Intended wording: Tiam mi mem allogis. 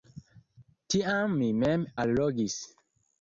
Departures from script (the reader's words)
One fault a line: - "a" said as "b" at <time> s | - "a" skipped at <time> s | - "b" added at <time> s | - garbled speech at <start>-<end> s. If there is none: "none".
none